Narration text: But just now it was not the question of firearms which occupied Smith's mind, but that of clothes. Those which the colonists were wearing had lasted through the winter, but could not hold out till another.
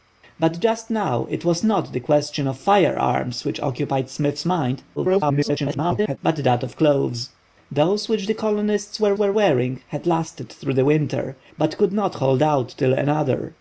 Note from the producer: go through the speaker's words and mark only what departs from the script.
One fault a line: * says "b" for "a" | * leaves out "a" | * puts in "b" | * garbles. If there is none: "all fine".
* garbles
* puts in "were"